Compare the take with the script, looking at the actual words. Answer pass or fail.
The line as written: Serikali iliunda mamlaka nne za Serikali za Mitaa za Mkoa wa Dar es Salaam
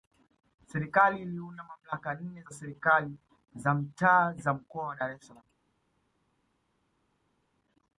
pass